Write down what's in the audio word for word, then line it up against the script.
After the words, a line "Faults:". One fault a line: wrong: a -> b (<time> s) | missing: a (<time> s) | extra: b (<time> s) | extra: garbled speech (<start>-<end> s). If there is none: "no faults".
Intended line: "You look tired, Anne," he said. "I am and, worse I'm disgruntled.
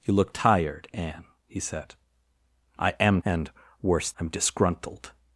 "You look tired, Anne," he said. "I am and, worse I'm disgruntled.
Faults:
no faults